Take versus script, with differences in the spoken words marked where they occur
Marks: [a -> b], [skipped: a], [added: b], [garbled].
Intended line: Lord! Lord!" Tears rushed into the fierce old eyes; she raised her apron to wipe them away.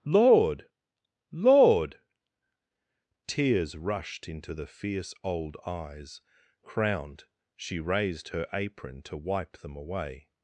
Lord! Lord!" Tears rushed into the fierce old eyes; [added: crowned] she raised her apron to wipe them away.